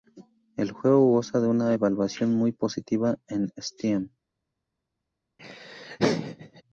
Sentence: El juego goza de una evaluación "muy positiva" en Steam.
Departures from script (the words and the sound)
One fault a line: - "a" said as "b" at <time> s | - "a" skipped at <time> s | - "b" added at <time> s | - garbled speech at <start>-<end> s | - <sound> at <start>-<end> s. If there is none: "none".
- laugh at 5.4-6.6 s